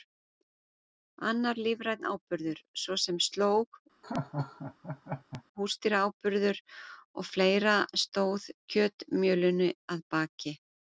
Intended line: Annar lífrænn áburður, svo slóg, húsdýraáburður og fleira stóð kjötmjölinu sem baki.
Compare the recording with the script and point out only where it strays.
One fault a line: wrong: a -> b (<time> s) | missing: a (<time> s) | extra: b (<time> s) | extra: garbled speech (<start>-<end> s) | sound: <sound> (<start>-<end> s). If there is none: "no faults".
extra: sem (3.0 s)
sound: laugh (4.0-5.4 s)
wrong: sem -> að (10.0 s)